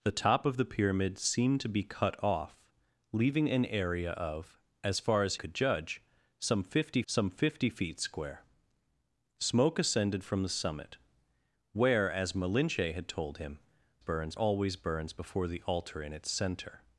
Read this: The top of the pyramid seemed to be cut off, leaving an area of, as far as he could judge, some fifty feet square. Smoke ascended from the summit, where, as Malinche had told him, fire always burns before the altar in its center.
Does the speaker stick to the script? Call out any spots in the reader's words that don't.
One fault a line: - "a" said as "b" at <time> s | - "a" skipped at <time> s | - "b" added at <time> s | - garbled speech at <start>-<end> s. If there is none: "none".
- "he" skipped at 5.3 s
- "some fifty" added at 7.0 s
- "fire" said as "burns" at 14.0 s